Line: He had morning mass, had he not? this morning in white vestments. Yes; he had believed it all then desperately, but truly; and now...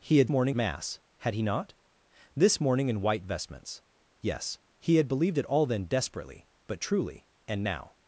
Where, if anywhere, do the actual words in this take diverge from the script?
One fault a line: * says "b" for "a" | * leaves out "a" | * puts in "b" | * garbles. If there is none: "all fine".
all fine